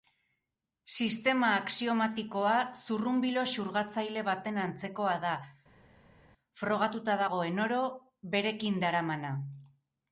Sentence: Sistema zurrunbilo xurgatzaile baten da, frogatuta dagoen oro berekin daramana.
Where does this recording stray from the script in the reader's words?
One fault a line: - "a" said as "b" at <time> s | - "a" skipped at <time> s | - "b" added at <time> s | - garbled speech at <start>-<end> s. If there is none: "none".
- "axiomatikoa" added at 1.6 s
- "antzekoa" added at 4.7 s